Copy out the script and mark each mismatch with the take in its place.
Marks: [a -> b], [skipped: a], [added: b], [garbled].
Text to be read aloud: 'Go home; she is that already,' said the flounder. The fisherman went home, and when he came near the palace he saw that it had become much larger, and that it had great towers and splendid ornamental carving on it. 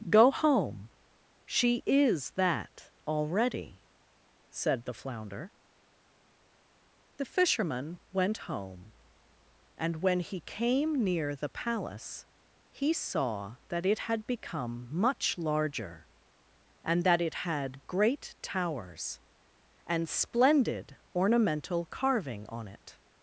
'Go home; she is that already,' said the flounder. The fisherman went home, and when he came near the palace he saw that it had become much larger, and that it had great towers and splendid ornamental carving on it.